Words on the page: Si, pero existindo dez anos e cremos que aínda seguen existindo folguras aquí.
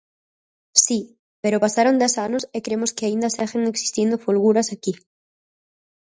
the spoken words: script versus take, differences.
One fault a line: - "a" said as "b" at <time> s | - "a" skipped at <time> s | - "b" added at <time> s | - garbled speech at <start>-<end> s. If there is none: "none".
- "existindo" said as "pasaron" at 1.6 s